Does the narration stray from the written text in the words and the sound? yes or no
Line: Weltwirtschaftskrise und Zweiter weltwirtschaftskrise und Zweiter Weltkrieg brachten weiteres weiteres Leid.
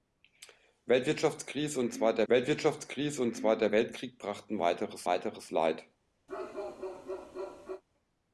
yes